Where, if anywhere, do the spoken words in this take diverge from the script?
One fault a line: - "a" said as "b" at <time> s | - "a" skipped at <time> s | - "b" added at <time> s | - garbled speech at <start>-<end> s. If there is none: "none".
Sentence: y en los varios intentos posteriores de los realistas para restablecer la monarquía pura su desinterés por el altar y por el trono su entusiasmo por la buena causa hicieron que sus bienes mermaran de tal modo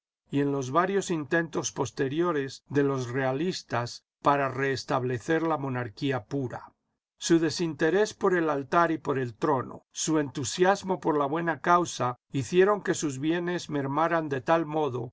none